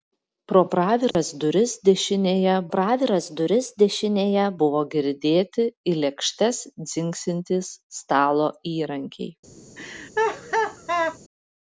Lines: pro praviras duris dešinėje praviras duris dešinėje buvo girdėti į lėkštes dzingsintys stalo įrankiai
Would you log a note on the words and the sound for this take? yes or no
yes